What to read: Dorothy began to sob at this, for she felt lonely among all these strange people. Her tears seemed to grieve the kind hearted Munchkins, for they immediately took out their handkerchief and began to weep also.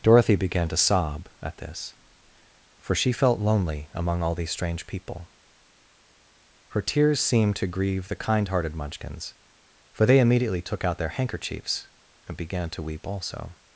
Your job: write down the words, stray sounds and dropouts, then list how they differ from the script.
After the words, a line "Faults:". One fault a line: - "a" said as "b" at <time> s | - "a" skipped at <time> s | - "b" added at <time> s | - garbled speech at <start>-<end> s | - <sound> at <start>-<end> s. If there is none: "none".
Dorothy began to sob at this, for she felt lonely among all these strange people. Her tears seemed to grieve the kind hearted Munchkins, for they immediately took out their handkerchiefs and began to weep also.
Faults:
- "handkerchief" said as "handkerchiefs" at 11.1 s